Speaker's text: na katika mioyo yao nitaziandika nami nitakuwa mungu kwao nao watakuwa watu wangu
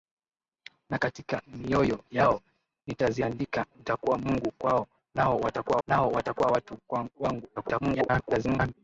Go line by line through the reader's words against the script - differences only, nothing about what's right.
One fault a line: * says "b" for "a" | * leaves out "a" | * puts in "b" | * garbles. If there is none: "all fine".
* leaves out "nami"
* puts in "nao watakuwa"
* garbles